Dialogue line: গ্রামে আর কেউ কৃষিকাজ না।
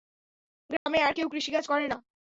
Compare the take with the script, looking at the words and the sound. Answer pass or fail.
fail